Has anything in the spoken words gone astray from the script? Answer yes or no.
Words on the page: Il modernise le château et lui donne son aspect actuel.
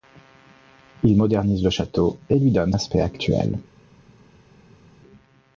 yes